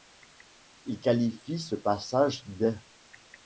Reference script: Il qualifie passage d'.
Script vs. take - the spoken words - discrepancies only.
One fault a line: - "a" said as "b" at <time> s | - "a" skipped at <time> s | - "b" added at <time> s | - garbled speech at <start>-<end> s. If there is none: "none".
- "ce" added at 1.6 s